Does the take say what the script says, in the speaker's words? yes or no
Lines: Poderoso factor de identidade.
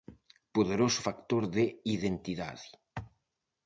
yes